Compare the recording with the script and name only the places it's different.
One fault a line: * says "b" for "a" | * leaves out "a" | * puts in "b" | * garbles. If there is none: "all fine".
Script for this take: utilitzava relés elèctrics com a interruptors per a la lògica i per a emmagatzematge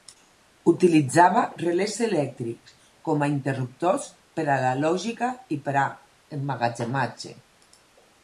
all fine